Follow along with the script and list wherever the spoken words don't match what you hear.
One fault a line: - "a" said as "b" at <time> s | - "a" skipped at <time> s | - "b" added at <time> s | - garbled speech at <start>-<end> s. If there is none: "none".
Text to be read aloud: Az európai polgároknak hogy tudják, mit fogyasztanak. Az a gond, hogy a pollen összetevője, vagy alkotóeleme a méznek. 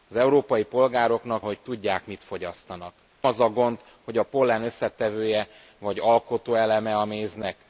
none